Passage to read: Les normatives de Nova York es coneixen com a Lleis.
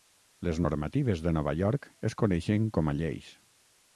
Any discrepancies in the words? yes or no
no